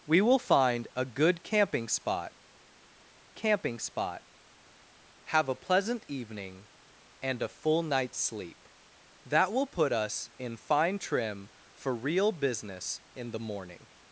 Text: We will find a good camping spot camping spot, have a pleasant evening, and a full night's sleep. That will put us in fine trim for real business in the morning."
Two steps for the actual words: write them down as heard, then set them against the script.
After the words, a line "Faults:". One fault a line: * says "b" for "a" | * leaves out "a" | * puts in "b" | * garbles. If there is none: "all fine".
We will find a good camping spot camping spot, have a pleasant evening, and a full night's sleep. That will put us in fine trim for real business in the morning."
Faults:
all fine